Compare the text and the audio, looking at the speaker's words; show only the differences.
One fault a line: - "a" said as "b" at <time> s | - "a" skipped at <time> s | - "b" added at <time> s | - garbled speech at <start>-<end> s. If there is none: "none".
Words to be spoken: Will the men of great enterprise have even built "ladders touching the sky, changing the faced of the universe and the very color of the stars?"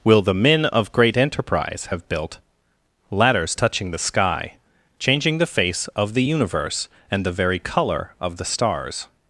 - "even" skipped at 2.1 s
- "faced" said as "face" at 5.5 s